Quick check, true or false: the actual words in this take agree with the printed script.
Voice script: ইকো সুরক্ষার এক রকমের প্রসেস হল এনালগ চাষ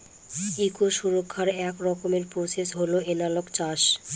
true